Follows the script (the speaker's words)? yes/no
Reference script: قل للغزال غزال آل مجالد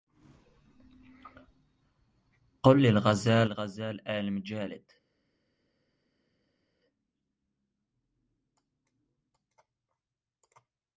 yes